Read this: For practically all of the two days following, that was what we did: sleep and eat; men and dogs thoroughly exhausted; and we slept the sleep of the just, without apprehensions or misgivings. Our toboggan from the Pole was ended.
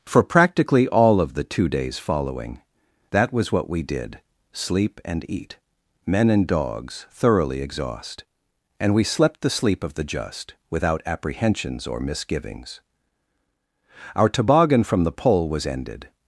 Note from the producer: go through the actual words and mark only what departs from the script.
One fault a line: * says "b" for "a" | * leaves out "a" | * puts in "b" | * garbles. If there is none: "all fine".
* says "exhaust" for "exhausted"